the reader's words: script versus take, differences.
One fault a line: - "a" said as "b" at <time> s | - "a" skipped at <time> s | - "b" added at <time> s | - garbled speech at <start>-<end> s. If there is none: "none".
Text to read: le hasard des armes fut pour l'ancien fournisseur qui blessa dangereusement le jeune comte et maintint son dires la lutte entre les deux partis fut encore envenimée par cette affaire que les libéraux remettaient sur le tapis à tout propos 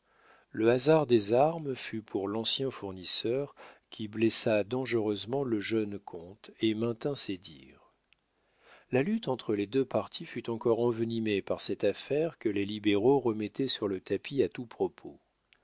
- "son" said as "ses" at 7.1 s